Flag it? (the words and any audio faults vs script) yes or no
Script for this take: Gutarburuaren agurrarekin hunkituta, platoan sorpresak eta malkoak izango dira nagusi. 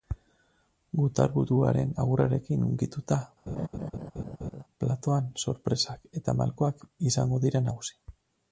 yes